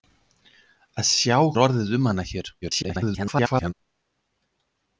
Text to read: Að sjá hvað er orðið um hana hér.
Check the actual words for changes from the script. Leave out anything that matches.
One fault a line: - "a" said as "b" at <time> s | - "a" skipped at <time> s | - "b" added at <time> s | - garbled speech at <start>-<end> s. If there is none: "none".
- "hvað" skipped at 1.4 s
- garbled speech at 2.6-3.7 s